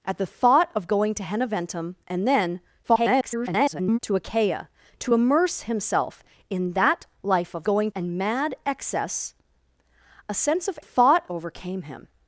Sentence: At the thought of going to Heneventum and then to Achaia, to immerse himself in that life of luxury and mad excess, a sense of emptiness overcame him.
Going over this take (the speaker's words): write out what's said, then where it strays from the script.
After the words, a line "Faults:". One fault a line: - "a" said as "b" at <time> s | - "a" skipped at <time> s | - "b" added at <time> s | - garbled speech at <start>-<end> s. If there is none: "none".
At the thought of going to Heneventum and then [garbled] to Achaia, to immerse himself in that life of going and mad excess, a sense of thought overcame him.
Faults:
- garbled speech at 2.8-4.0 s
- "luxury" said as "going" at 7.6 s
- "emptiness" said as "thought" at 10.8 s